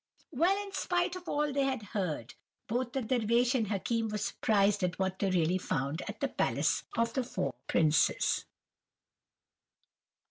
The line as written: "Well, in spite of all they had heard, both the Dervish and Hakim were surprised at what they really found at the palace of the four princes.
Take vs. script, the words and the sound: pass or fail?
pass